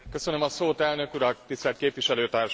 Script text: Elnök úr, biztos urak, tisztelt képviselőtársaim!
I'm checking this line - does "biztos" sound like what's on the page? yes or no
no